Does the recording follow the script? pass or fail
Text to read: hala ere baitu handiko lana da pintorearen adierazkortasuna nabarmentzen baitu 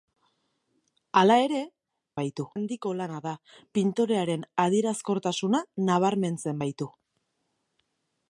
pass